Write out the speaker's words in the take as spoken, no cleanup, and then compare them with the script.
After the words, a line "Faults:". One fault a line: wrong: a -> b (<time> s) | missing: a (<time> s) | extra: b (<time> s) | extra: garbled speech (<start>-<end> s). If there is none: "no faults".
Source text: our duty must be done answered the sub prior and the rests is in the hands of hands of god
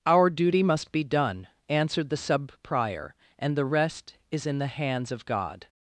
our duty must be done answered the sub prior and the rest is in the hands of god
Faults:
wrong: rests -> rest (3.6 s)
missing: hands of (5.3 s)